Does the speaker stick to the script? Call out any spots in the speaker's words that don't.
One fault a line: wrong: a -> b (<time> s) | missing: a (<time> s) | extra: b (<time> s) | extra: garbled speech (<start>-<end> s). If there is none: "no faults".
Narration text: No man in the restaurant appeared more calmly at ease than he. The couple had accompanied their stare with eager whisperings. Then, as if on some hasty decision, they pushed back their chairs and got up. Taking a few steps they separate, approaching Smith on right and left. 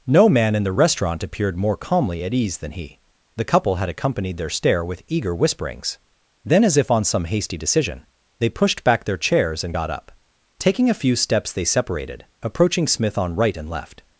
wrong: separate -> separated (11.6 s)